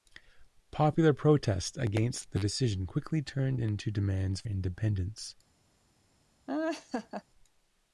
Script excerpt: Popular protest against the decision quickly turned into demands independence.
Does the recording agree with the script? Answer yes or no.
yes